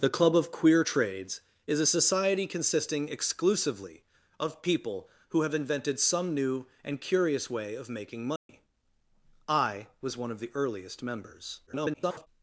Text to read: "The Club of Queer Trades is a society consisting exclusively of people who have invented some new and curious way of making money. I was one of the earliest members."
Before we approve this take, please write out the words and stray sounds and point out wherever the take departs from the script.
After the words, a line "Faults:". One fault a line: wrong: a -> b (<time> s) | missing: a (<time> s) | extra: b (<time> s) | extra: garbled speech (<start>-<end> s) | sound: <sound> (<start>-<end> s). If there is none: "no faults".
"The Club of Queer Trades is a society consisting exclusively of people who have invented some new and curious way of making money. I was one of the earliest members." [garbled]
Faults:
sound: dropout (8.4-8.5 s)
extra: garbled speech (11.7-12.3 s)